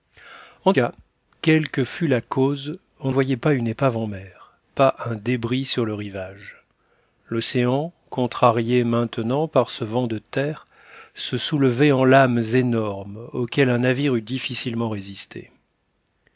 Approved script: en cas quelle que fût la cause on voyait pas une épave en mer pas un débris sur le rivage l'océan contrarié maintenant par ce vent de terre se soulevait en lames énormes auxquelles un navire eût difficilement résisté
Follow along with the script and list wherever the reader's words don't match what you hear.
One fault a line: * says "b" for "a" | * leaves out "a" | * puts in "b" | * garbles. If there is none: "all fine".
all fine